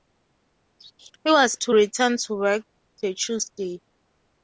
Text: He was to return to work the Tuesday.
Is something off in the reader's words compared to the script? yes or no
no